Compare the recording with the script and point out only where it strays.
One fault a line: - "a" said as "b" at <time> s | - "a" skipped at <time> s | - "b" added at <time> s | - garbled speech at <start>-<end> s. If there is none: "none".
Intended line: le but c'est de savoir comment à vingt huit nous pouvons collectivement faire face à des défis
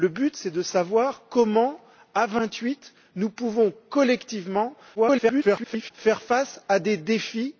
- garbled speech at 5.0-5.9 s